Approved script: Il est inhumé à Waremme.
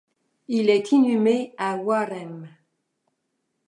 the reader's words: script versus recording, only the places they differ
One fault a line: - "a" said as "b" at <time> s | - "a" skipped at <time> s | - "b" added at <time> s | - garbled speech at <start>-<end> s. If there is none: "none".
none